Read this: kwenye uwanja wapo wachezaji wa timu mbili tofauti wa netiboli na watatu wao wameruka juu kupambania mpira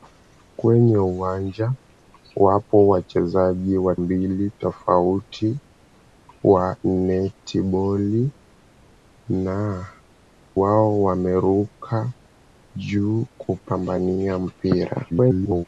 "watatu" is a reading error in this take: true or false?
true